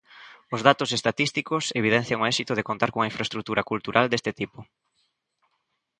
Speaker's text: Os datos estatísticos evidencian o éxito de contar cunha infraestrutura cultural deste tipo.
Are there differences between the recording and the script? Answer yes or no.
no